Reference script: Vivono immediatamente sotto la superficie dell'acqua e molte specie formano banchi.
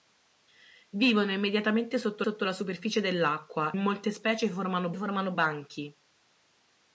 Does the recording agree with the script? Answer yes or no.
no